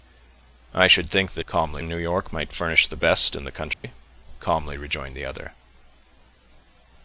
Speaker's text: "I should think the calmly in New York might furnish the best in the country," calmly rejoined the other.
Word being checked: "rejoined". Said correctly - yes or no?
yes